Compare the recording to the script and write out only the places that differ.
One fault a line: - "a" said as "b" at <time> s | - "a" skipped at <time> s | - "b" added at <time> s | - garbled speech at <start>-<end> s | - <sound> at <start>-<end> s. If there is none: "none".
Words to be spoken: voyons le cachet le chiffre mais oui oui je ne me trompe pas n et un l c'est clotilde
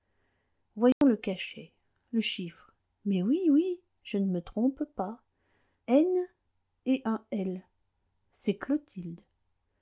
- dropout at 0.9-1.0 s